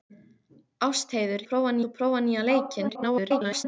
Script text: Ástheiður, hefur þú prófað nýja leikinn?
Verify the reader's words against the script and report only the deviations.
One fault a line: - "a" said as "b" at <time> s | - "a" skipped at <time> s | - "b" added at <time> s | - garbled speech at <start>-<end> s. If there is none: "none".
- "hefur" said as "prófað" at 1.5 s
- garbled speech at 2.9-3.7 s